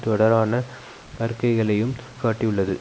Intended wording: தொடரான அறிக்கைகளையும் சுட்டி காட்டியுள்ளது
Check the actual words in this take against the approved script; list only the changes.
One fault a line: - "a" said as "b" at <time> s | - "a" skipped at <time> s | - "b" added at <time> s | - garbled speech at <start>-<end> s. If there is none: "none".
- "சுட்டி" skipped at 1.9 s